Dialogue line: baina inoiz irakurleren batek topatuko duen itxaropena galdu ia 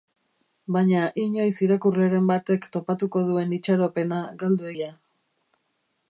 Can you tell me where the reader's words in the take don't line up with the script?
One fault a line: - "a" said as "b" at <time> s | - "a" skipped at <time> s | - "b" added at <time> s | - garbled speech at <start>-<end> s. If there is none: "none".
none